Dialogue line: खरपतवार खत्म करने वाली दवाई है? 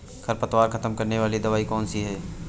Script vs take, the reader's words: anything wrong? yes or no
yes